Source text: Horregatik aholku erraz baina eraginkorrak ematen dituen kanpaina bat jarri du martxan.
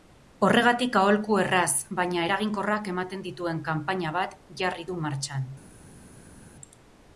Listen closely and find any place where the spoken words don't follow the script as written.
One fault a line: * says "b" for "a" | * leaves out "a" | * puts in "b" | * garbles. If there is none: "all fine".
all fine